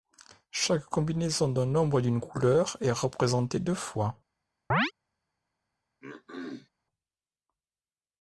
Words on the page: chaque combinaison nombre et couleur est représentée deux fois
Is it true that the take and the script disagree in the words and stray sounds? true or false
true